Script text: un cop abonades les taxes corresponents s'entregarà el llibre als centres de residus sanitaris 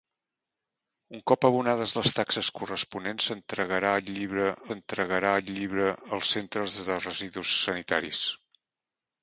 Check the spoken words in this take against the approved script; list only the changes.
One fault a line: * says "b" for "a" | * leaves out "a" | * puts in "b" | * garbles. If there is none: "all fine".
* puts in "s'entregarà el llibre"